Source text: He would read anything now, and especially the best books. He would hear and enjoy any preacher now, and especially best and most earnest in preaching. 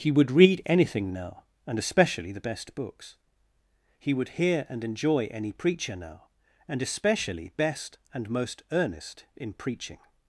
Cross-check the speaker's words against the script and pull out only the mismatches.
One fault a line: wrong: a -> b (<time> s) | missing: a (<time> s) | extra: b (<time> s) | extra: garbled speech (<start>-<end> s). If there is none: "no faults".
no faults